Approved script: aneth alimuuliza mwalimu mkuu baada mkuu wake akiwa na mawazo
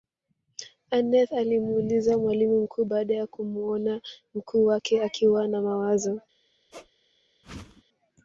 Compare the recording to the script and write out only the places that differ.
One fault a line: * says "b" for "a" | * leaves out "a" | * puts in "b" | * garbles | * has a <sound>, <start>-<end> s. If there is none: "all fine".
* puts in "ya kumuona"
* has a squeak, 6.7-6.9 s
* has a whoosh, 7.4-7.8 s